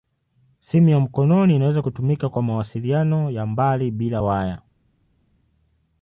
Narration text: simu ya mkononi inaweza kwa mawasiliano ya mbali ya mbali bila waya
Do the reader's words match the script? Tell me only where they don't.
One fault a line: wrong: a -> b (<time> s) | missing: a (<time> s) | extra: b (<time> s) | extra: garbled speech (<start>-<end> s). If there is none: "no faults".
extra: kutumika (1.8 s)
missing: ya mbali (3.9 s)